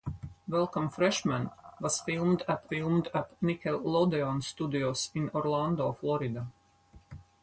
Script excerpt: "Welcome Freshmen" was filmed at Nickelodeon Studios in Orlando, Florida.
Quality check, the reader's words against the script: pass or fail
fail